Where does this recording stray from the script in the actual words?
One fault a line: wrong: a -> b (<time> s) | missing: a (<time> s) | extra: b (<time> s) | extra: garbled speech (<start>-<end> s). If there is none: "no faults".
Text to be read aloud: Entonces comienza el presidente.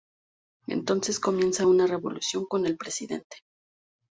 extra: una revolución con (1.7 s)